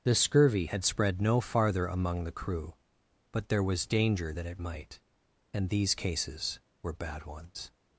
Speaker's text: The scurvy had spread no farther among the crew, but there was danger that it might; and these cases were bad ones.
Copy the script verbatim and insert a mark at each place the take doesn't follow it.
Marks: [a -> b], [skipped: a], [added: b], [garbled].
The scurvy had spread no farther among the crew, but there was danger that it might; and these cases were bad ones.